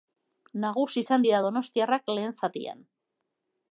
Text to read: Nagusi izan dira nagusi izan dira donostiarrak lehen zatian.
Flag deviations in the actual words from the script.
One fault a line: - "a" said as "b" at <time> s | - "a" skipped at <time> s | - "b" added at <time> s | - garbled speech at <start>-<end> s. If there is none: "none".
- "nagusi izan dira" skipped at 1.4 s